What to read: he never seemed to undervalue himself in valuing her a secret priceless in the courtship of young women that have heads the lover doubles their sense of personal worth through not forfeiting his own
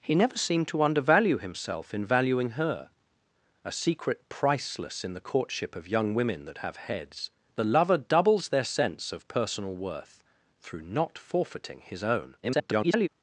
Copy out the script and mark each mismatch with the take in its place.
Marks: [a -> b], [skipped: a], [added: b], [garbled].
he never seemed to undervalue himself in valuing her a secret priceless in the courtship of young women that have heads the lover doubles their sense of personal worth through not forfeiting his own [garbled]